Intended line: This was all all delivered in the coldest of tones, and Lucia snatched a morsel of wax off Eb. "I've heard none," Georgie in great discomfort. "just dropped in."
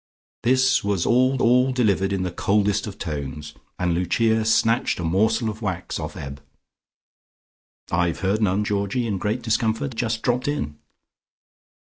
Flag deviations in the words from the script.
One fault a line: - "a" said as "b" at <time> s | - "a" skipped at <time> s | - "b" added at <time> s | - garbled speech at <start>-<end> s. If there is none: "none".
none